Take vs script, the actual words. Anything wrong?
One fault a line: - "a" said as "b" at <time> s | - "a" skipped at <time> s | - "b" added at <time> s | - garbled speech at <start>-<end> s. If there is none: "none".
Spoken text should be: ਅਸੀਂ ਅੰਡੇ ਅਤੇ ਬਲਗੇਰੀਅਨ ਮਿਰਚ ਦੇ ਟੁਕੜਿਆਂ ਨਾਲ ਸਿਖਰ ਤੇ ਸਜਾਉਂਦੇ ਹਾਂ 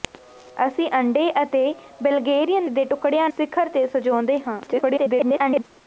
- "ਮਿਰਚ" skipped at 2.7 s
- "ਨਾਲ" skipped at 3.3 s
- garbled speech at 4.7-5.6 s